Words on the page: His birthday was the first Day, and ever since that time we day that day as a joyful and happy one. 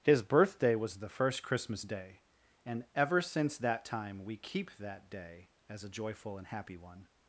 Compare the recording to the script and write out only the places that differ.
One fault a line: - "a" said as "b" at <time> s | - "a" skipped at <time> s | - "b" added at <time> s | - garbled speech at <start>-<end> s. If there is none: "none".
- "Christmas" added at 1.4 s
- "day" said as "keep" at 4.4 s